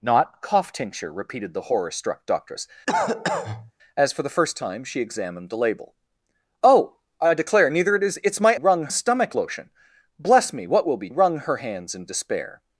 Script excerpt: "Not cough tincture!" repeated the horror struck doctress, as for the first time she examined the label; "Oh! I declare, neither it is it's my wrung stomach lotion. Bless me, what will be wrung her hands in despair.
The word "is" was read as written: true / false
true